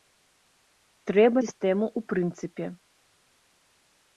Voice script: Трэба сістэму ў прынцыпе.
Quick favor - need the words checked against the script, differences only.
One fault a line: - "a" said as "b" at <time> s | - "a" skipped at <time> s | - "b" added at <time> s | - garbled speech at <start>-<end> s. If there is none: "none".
none